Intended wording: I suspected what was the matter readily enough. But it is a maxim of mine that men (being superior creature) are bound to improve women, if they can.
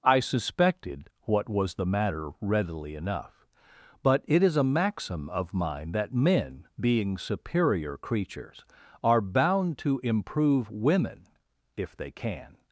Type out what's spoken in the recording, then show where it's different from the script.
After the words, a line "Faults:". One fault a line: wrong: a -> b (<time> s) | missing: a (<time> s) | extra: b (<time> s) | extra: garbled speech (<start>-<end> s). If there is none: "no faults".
I suspected what was the matter readily enough. But it is a maxim of mine that men (being superior creatures) are bound to improve women, if they can.
Faults:
wrong: creature -> creatures (8.0 s)